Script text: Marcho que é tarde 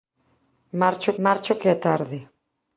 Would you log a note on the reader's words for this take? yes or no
yes